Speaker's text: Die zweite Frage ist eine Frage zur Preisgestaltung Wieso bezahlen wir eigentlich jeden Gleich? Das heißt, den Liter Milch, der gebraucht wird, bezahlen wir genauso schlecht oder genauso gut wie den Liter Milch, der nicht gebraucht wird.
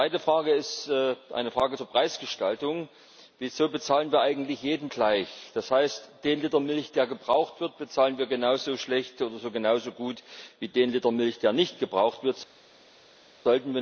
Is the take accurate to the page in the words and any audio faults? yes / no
yes